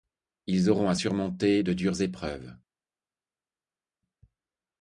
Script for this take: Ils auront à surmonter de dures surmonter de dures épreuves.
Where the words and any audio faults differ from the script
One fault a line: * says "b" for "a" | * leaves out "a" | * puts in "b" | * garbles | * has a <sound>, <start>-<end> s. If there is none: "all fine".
* leaves out "surmonter de dures"